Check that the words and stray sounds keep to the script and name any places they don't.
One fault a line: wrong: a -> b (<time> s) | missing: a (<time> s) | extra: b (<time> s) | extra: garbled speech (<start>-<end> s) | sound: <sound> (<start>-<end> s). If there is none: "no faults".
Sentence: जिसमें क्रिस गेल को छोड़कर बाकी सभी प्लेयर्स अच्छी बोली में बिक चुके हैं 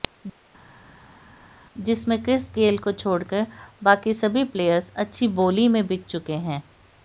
no faults